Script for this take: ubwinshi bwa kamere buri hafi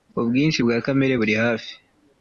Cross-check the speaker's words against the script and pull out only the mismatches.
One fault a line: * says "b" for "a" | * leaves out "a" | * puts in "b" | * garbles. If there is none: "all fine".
all fine